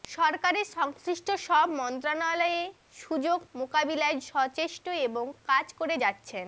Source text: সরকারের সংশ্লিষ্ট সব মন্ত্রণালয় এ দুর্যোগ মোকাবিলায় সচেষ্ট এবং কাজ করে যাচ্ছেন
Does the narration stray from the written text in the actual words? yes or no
no